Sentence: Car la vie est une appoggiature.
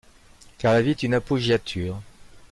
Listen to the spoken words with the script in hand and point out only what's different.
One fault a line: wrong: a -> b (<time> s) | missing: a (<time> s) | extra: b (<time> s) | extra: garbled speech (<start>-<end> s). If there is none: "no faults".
no faults